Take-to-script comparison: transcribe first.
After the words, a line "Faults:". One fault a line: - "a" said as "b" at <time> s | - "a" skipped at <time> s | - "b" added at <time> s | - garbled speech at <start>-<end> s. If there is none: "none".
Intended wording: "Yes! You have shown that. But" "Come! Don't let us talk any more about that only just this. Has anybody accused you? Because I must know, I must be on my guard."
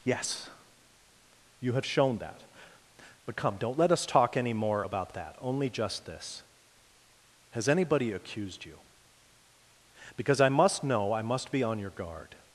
"Yes! You have shown that. But" "Come! Don't let us talk any more about that only just this. Has anybody accused you? Because I must know, I must be on your guard."
Faults:
- "my" said as "your" at 11.8 s